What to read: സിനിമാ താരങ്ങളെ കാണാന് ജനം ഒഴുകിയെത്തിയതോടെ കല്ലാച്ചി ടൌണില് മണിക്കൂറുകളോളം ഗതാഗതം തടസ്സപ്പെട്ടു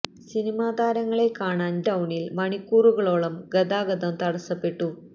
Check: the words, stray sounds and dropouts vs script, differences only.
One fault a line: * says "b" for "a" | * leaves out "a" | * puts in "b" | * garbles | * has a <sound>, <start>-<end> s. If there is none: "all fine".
* leaves out "ജനം ഒഴുകിയെത്തിയതോടെ കല്ലാച്ചി"